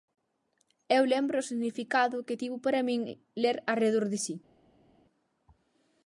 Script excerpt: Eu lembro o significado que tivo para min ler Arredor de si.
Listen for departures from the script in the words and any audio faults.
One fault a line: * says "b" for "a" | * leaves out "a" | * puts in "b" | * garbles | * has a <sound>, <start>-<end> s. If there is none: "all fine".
all fine